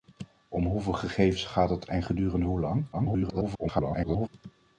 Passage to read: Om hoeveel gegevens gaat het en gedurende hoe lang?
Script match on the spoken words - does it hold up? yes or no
no